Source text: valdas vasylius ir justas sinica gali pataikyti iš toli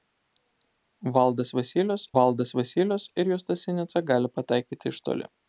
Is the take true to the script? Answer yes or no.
no